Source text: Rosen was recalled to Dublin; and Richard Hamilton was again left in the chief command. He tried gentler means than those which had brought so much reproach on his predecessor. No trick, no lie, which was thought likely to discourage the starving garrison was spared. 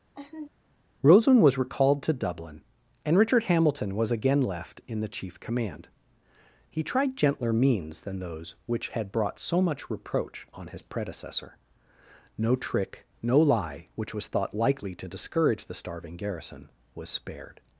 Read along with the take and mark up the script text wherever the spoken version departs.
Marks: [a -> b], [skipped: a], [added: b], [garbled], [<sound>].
[laugh] Rosen was recalled to Dublin; and Richard Hamilton was again left in the chief command. He tried gentler means than those which had brought so much reproach on his predecessor. No trick, no lie, which was thought likely to discourage the starving garrison was spared.